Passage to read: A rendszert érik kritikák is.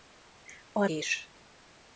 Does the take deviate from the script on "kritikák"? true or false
true